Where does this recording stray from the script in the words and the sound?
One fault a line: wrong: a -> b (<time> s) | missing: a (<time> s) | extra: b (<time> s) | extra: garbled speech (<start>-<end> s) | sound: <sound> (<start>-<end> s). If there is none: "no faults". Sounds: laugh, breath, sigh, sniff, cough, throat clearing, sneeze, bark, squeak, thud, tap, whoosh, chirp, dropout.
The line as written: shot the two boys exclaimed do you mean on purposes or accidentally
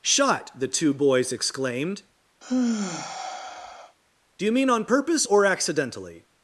sound: sigh (2.4-4.0 s)
wrong: purposes -> purpose (4.9 s)